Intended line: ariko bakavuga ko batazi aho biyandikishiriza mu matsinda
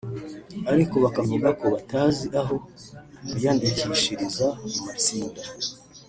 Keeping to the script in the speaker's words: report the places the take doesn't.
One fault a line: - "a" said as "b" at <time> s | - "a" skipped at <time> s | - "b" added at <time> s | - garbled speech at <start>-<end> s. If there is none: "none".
none